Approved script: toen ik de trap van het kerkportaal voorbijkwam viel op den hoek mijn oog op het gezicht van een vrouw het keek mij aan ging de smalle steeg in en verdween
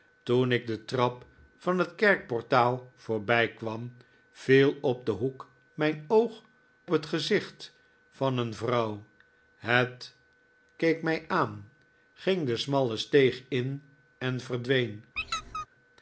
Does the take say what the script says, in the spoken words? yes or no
no